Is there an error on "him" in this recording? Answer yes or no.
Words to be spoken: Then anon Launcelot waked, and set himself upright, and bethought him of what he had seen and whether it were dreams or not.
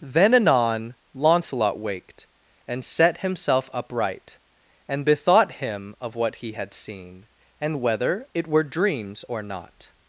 no